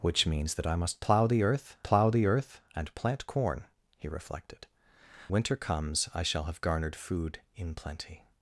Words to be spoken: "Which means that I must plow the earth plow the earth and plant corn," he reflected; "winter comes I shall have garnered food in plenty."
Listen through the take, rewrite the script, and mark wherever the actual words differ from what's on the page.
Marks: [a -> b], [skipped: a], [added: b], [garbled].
"Which means that I must plow the earth plow the earth and plant corn," he reflected; "winter comes I shall have garnered food in plenty."